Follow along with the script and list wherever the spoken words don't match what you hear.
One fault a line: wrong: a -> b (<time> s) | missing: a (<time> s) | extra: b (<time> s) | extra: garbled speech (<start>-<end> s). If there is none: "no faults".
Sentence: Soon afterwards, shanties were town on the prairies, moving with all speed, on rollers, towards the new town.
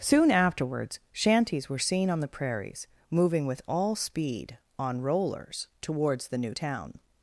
wrong: town -> seen (1.8 s)